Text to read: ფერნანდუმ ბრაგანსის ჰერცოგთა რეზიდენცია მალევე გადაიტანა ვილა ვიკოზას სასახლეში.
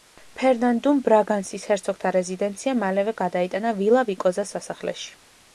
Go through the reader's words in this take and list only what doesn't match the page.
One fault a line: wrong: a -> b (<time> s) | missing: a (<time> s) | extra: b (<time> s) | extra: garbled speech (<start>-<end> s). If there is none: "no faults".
no faults